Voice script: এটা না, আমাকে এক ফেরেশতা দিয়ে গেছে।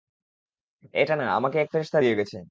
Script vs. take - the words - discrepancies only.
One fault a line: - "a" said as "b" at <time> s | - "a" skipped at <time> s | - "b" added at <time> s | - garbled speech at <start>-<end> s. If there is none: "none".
none